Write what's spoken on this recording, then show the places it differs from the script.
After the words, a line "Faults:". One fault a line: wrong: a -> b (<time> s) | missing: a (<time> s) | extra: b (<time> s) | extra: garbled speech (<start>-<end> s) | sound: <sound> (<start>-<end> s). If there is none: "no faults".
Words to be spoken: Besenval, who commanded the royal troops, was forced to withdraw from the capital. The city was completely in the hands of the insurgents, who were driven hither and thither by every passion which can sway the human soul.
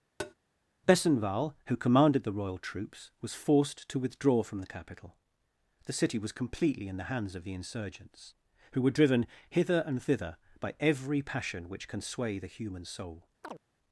Besenval, who commanded the royal troops, was forced to withdraw from the capital. The city was completely in the hands of the insurgents, who were driven hither and thither by every passion which can sway the human soul.
Faults:
sound: tap (0.2-0.3 s)
sound: chirp (13.4-13.6 s)